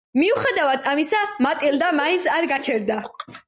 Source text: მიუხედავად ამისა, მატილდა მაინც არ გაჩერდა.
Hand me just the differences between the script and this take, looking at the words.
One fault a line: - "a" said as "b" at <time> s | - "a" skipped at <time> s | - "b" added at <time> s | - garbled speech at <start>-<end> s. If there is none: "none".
none